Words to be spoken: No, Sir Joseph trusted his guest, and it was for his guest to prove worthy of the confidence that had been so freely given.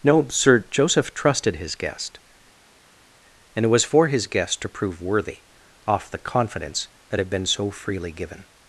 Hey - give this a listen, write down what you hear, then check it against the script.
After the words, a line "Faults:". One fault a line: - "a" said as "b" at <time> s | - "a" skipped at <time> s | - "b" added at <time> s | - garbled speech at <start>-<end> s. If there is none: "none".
No, Sir Joseph trusted his guest, and it was for his guest to prove worthy off the confidence that had been so freely given.
Faults:
- "of" said as "off" at 5.9 s